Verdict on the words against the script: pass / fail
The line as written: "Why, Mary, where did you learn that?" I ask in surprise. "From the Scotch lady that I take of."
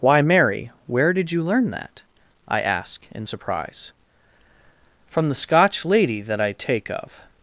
pass